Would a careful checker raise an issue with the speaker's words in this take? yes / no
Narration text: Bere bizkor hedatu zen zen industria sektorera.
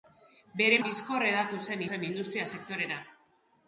no